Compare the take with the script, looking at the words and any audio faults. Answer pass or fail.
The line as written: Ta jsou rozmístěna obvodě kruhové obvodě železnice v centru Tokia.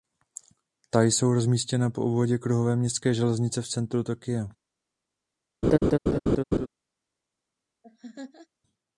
fail